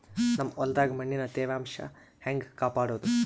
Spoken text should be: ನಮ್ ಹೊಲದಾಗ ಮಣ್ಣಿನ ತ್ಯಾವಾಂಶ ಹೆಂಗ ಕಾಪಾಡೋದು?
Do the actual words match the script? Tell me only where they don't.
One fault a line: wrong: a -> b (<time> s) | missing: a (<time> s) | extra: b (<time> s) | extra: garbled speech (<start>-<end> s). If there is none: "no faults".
no faults